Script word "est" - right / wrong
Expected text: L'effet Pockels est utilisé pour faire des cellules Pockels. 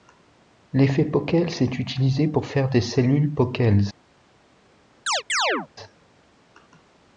right